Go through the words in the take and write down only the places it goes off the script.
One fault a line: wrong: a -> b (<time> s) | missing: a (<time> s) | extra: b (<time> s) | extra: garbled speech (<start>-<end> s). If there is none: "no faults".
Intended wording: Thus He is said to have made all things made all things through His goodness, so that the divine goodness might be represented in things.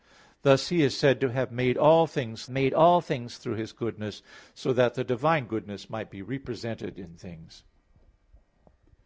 no faults